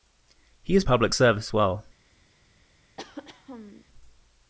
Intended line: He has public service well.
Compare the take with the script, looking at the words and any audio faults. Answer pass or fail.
fail